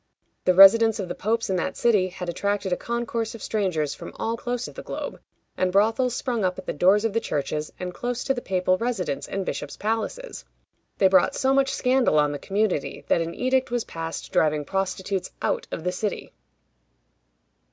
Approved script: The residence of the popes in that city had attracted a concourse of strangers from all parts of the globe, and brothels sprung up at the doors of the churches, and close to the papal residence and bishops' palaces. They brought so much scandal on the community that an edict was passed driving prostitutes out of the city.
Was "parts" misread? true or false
true